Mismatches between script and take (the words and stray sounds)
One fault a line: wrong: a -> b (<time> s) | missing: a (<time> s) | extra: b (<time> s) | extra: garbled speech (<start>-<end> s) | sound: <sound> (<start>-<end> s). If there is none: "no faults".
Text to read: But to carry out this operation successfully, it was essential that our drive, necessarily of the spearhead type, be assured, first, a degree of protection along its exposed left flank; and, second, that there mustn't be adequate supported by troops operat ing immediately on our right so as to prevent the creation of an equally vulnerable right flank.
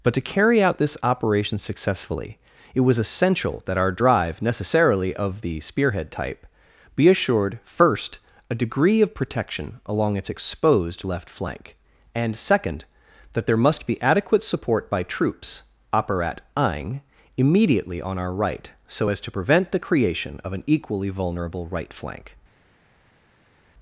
wrong: mustn't -> must (13.6 s)
wrong: supported -> support (14.4 s)